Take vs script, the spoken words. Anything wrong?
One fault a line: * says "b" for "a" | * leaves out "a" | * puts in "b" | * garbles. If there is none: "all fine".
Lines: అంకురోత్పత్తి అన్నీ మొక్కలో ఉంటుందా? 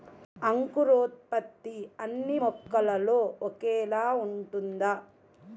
* puts in "ఒకేలా"